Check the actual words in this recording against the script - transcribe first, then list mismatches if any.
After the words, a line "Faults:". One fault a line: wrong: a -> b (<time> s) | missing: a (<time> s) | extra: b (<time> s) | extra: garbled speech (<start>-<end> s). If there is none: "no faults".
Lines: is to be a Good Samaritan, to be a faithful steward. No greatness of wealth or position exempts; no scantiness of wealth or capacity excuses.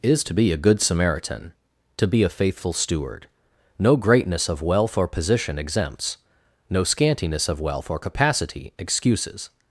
is to be a Good Samaritan, to be a faithful steward. No greatness of wealth or position exempts; no scantiness of wealth or capacity excuses.
Faults:
no faults